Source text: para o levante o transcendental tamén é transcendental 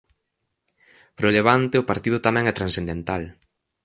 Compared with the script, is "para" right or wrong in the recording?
right